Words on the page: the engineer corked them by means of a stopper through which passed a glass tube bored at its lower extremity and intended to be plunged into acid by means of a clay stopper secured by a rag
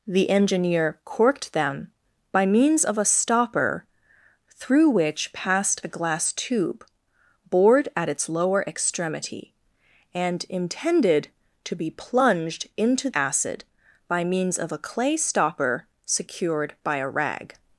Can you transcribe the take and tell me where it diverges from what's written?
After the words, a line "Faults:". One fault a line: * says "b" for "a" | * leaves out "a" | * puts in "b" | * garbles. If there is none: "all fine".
the engineer corked them by means of a stopper through which passed a glass tube bored at its lower extremity and intended to be plunged into acid by means of a clay stopper secured by a rag
Faults:
all fine